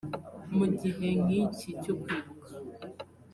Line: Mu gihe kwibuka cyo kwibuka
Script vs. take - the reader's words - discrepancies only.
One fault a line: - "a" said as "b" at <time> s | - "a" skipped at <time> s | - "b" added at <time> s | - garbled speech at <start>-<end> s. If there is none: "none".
- "kwibuka" said as "nk'iki" at 1.2 s